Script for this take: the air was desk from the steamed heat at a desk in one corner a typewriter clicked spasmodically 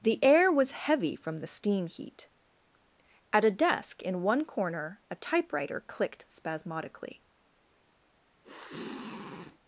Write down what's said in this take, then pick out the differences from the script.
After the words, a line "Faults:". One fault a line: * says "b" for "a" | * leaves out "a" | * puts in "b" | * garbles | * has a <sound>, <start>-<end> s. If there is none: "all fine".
the air was heavy from the steam heat at a desk in one corner a typewriter clicked spasmodically
Faults:
* says "heavy" for "desk"
* says "steam" for "steamed"
* has a sniff, 8.4-9.6 s